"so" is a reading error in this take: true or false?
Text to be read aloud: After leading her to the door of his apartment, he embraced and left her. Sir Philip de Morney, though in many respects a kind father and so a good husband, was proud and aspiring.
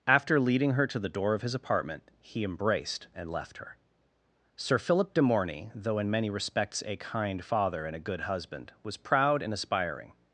true